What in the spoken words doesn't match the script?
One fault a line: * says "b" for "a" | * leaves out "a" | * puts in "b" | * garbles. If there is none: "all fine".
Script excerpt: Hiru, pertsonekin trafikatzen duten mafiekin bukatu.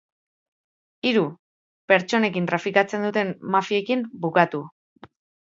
all fine